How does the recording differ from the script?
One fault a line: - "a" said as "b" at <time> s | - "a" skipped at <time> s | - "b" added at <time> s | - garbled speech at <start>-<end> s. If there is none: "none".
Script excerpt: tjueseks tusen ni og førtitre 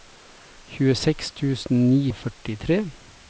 none